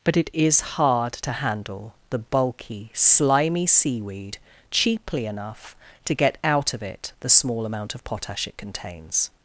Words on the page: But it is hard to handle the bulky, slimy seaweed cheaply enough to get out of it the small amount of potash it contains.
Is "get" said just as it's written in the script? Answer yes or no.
yes